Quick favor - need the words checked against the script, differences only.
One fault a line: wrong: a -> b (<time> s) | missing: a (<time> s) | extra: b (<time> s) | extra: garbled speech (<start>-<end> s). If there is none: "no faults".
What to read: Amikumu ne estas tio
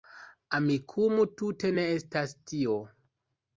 extra: tute (1.4 s)